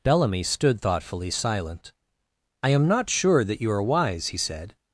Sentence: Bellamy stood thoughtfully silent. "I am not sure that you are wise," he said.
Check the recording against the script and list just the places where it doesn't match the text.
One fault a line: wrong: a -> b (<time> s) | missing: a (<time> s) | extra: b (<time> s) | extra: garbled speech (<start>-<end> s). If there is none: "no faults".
no faults